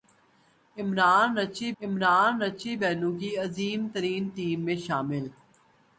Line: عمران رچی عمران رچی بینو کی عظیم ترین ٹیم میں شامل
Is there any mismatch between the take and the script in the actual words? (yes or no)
no